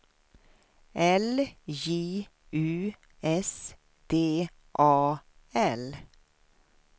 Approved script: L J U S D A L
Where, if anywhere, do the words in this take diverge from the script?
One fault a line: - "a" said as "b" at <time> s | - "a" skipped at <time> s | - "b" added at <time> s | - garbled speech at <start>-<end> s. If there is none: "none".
none